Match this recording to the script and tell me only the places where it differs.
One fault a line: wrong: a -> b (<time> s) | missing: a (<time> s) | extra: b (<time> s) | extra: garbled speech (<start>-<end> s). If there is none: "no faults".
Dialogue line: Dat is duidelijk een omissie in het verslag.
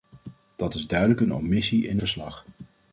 missing: het (2.0 s)